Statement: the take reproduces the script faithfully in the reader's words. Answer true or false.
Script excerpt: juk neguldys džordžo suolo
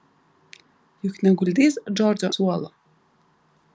true